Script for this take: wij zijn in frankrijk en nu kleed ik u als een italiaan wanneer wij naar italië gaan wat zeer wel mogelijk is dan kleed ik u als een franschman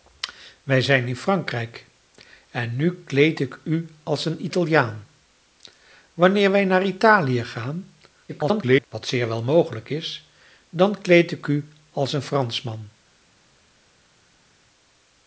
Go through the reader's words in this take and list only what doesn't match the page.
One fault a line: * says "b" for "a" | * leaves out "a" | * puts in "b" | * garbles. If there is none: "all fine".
* garbles